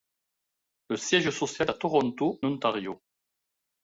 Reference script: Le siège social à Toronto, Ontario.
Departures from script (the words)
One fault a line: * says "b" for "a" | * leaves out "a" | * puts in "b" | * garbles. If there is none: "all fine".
all fine